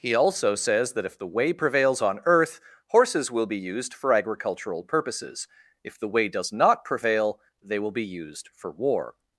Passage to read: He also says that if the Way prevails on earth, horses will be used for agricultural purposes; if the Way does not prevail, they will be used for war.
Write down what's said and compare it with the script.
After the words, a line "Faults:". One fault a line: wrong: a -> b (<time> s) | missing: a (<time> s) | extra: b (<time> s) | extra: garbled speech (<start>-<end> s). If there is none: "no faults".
He also says that if the Way prevails on earth, horses will be used for agricultural purposes; if the Way does not prevail, they will be used for war.
Faults:
no faults